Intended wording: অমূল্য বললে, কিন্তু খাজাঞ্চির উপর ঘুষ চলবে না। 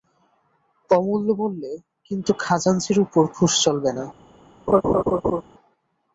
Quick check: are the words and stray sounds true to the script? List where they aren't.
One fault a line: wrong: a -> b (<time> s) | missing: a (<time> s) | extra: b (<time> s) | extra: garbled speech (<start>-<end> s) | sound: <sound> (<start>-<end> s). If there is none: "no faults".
sound: laugh (4.7-5.4 s)